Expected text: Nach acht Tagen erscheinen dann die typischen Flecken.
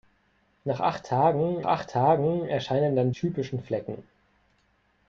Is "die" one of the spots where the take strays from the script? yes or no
yes